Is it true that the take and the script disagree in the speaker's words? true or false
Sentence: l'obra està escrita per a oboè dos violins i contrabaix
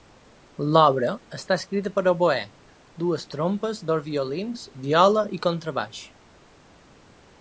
true